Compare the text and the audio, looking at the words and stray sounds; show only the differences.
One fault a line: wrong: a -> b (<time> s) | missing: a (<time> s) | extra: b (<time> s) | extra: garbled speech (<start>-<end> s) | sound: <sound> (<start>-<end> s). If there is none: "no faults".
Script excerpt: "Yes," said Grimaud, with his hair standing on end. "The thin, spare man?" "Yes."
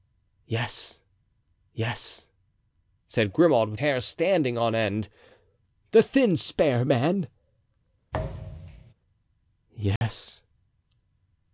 extra: yes (1.7 s)
missing: his (3.8 s)
sound: thud (8.1-8.9 s)
sound: dropout (10.0-10.0 s)